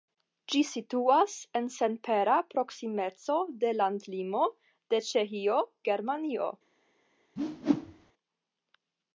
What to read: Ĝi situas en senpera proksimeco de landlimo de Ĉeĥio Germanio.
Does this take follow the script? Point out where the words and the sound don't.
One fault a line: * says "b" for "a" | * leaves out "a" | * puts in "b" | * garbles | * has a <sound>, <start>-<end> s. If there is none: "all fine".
* has a whoosh, 7.4-8.1 s